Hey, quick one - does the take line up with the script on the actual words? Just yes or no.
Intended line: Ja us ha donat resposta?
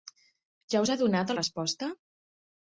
yes